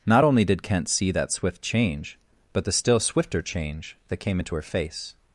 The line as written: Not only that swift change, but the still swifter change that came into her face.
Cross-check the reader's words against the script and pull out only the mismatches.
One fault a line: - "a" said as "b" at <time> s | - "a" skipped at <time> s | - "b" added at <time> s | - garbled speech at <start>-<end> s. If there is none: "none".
- "did Kent see" added at 0.4 s